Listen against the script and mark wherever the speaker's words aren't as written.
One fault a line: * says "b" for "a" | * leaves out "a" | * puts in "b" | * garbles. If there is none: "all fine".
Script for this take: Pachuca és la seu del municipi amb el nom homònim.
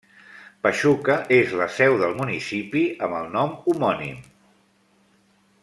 all fine